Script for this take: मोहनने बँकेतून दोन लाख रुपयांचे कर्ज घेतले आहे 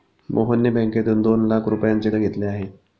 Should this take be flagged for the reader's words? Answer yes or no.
yes